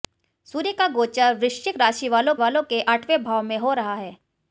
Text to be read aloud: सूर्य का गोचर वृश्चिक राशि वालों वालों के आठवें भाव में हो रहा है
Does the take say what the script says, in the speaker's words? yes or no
yes